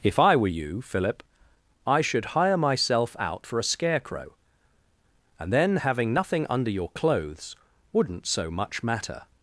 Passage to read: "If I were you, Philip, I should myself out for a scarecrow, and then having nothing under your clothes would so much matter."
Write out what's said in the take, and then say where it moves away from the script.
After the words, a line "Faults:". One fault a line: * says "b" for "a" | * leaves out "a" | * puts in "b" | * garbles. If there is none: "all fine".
"If I were you, Philip, I should hire myself out for a scarecrow, and then having nothing under your clothes wouldn't so much matter."
Faults:
* puts in "hire"
* says "wouldn't" for "would"